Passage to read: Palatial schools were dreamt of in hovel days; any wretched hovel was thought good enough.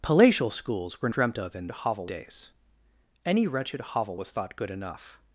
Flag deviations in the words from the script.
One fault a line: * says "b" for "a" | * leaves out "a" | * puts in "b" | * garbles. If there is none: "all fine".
all fine